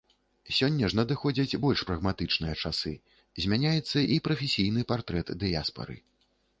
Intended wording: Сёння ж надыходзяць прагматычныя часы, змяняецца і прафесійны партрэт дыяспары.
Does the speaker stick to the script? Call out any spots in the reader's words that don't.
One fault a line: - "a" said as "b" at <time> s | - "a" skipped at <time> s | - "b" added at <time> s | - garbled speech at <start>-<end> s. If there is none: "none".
- "больш" added at 1.6 s